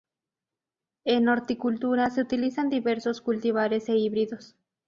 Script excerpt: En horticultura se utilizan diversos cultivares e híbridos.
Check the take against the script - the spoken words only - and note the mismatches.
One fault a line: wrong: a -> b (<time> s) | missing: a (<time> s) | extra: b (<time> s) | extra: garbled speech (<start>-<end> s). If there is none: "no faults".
no faults